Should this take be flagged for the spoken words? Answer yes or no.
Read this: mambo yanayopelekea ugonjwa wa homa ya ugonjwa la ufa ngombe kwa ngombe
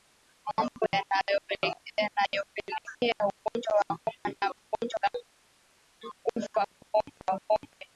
no